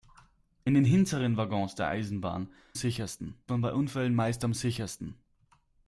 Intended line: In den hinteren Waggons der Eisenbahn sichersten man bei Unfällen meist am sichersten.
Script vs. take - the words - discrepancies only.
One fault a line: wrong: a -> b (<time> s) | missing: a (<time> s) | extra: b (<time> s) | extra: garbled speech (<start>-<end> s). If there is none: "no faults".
no faults